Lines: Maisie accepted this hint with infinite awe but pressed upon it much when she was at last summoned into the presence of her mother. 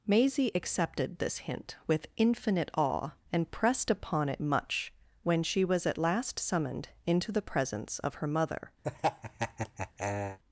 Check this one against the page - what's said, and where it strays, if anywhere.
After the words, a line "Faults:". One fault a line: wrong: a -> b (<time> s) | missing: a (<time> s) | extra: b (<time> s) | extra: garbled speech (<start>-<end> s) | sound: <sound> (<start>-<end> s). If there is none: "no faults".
Maisie accepted this hint with infinite awe and pressed upon it much when she was at last summoned into the presence of her mother.
Faults:
wrong: but -> and (3.3 s)
sound: laugh (8.8-10.4 s)